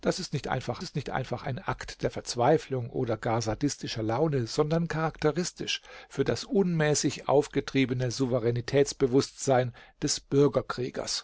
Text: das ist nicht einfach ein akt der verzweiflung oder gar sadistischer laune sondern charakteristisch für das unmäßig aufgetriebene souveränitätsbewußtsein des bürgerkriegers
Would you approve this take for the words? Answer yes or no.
no